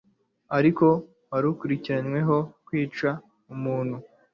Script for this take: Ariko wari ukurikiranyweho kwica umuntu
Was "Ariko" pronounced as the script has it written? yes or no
yes